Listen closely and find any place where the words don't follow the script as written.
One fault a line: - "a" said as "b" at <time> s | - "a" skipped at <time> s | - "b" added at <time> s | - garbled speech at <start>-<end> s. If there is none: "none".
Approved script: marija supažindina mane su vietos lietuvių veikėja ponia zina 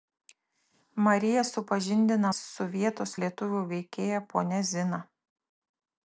- "mane" skipped at 2.3 s